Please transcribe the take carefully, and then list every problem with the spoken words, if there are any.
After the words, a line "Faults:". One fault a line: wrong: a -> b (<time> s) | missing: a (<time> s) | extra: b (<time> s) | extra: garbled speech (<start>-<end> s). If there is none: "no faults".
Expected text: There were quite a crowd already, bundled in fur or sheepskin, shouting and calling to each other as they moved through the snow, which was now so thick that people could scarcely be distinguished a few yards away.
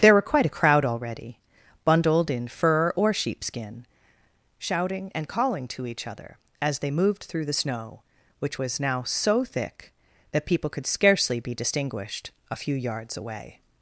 There were quite a crowd already, bundled in fur or sheepskin, shouting and calling to each other as they moved through the snow, which was now so thick that people could scarcely be distinguished a few yards away.
Faults:
no faults